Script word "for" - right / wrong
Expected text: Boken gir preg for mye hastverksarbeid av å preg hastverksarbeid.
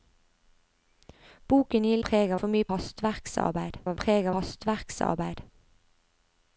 right